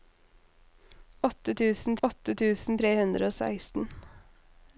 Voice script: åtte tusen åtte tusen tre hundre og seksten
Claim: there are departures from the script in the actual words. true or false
false